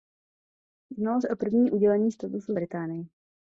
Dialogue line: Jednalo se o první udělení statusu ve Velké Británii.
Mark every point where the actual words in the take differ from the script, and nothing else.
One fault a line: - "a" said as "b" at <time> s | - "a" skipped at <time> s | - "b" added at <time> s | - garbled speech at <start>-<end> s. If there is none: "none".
- "ve Velké" skipped at 2.5 s